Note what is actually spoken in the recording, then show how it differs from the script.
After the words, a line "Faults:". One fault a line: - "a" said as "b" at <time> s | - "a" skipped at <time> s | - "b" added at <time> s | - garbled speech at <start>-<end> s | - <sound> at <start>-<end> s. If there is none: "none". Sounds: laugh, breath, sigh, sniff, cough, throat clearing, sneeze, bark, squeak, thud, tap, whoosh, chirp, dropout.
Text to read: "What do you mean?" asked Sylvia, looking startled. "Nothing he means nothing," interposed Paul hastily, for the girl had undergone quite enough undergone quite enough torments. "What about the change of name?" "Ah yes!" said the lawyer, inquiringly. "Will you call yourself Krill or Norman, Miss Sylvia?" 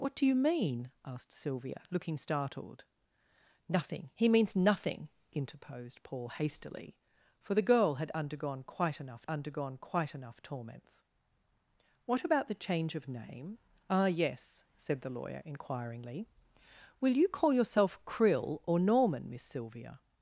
"What do you mean?" asked Sylvia, looking startled. "Nothing he means nothing," interposed Paul hastily, for the girl had undergone quite enough undergone quite enough torments. "What about the change of name?" "Ah yes!" said the lawyer, inquiringly. "Will you call yourself Krill or Norman, Miss Sylvia?"
Faults:
none